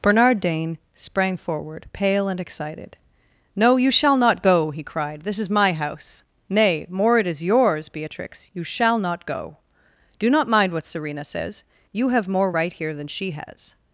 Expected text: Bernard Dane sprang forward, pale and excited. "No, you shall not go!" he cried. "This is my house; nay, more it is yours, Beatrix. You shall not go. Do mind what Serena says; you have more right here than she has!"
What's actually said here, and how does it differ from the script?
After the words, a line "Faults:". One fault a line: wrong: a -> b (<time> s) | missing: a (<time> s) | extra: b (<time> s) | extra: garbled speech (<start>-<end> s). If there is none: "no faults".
Bernard Dane sprang forward, pale and excited. "No, you shall not go!" he cried. "This is my house; nay, more it is yours, Beatrix. You shall not go. Do not mind what Serena says; you have more right here than she has!"
Faults:
extra: not (10.3 s)